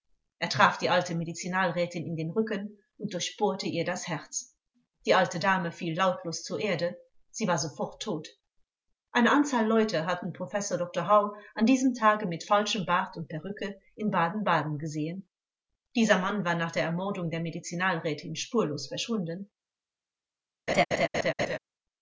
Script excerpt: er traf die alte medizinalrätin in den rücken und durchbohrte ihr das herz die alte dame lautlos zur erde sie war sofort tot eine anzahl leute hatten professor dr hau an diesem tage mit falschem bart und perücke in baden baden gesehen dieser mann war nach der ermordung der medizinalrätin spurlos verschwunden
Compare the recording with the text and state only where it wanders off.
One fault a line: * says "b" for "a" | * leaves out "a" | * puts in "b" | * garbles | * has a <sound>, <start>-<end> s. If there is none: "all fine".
* puts in "fiel"
* has a laugh, 20.7-21.6 s